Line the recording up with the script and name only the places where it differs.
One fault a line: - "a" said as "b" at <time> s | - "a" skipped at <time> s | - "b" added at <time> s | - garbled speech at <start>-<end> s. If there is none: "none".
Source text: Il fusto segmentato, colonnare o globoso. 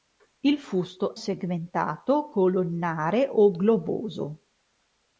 none